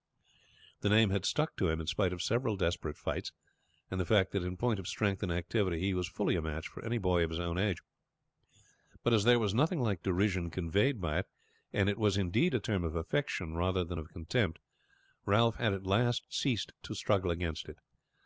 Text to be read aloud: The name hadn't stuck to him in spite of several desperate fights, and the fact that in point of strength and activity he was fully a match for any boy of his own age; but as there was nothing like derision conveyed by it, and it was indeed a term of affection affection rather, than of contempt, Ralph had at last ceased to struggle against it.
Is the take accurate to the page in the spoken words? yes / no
no